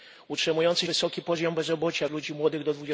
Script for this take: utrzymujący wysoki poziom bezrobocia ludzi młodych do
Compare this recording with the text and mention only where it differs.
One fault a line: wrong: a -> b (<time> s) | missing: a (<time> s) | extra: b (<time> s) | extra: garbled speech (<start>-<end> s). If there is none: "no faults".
no faults